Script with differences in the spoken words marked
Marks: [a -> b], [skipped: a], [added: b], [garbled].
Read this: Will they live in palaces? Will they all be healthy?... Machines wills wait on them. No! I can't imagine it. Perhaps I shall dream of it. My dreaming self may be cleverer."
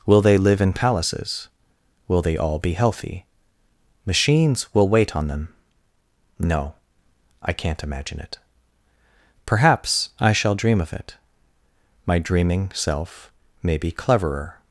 Will they live in palaces? Will they all be healthy?... Machines [wills -> will] wait on them. No! I can't imagine it. Perhaps I shall dream of it. My dreaming self may be cleverer."